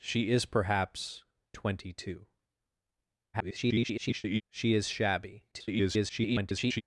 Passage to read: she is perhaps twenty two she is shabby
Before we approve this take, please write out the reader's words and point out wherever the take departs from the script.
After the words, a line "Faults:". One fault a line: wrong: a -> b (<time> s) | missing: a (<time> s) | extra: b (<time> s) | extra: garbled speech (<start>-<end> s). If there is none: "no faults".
she is perhaps twenty two [garbled] she is shabby [garbled]
Faults:
extra: garbled speech (3.3-4.4 s)
extra: garbled speech (5.5-6.8 s)